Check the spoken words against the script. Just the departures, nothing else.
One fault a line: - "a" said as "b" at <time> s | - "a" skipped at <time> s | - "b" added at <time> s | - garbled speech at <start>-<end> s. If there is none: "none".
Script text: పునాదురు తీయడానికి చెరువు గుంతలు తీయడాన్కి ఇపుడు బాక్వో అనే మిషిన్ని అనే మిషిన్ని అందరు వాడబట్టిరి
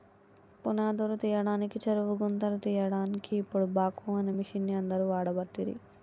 - "అనే మిషిన్ని" skipped at 4.7 s